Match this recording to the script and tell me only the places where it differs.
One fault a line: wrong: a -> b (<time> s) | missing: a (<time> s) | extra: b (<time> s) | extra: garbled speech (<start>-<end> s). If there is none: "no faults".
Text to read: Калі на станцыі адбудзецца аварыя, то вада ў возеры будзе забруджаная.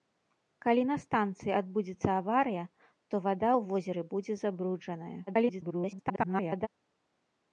extra: garbled speech (5.3-6.7 s)